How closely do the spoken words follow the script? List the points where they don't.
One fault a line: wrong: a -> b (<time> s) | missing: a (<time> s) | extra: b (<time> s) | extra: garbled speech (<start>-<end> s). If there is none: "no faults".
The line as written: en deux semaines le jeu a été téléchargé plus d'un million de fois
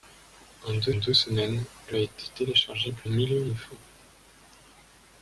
extra: deux (0.9 s)
missing: jeu (2.0 s)
missing: d'un (3.1 s)